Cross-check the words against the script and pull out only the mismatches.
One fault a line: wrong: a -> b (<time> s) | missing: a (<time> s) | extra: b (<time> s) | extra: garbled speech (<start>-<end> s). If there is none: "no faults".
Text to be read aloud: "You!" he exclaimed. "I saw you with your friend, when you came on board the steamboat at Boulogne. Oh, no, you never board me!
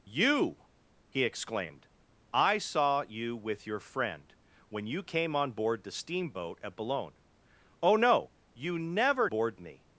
no faults